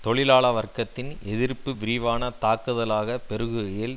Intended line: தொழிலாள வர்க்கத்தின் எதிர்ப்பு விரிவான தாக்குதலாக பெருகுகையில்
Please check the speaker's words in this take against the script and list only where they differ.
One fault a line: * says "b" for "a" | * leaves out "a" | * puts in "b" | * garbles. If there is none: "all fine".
all fine